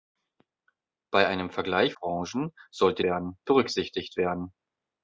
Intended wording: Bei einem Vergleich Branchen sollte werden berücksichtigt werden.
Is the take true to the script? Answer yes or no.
yes